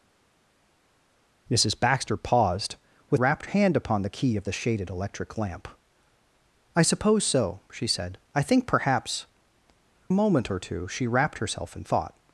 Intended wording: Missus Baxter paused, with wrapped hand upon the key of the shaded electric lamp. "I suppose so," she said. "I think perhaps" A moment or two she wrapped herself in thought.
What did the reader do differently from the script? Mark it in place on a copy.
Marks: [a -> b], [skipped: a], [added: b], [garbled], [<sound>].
Missus Baxter paused, with wrapped hand upon the key of the shaded electric lamp. "I suppose so," she said. "I think perhaps" A moment or two she wrapped herself in thought.